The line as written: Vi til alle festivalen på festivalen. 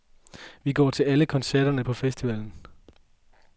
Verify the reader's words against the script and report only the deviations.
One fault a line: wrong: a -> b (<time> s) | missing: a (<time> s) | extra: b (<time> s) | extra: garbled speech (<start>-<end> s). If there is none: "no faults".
extra: går (0.7 s)
wrong: festivalen -> koncerterne (1.2 s)